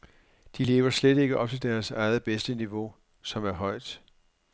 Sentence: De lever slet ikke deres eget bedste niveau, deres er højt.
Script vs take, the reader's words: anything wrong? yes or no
yes